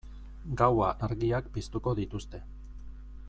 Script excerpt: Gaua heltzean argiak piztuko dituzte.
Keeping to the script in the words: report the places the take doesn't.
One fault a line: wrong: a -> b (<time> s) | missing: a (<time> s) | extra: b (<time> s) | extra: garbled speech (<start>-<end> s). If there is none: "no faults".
missing: heltzean (0.9 s)